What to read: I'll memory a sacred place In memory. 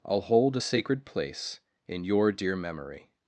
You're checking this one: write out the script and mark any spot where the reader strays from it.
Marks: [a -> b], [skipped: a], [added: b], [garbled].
I'll [memory -> hold] a sacred place In [added: your dear] memory.